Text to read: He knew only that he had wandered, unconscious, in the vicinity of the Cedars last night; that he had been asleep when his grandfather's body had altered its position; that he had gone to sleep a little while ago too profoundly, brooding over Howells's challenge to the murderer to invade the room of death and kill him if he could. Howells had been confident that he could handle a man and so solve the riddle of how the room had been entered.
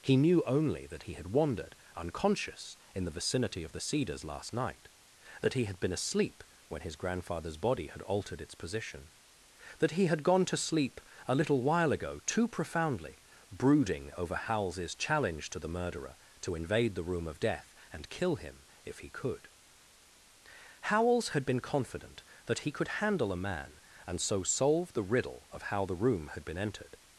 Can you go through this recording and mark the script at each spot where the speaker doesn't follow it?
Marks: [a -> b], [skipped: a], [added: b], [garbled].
He knew only that he had wandered, unconscious, in the vicinity of the Cedars last night; that he had been asleep when his grandfather's body had altered its position; that he had gone to sleep a little while ago too profoundly, brooding over Howells's challenge to the murderer to invade the room of death and kill him if he could. Howells had been confident that he could handle a man and so solve the riddle of how the room had been entered.